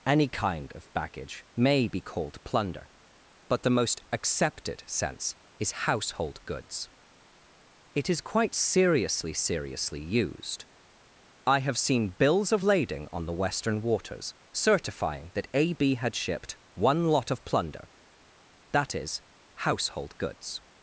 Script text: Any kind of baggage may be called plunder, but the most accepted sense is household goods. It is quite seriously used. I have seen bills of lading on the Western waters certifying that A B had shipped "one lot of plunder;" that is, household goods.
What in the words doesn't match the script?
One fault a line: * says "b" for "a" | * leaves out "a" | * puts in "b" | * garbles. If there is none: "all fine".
* puts in "seriously"